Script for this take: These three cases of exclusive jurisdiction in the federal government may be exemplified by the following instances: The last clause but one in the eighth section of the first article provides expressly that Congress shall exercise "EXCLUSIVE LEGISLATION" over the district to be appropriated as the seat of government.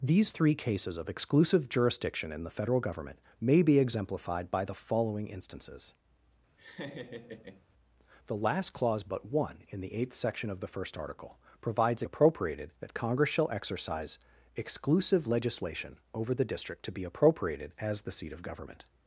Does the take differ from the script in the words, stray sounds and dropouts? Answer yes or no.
yes